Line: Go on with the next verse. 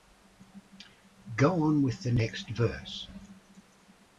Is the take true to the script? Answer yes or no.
yes